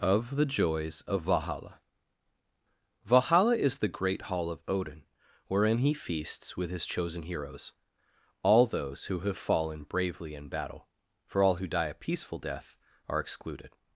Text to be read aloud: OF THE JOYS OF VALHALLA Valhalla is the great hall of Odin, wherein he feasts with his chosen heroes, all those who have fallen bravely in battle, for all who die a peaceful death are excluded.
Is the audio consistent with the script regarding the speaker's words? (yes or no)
yes